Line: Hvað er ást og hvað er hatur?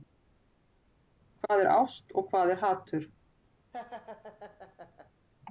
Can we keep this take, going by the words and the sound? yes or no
no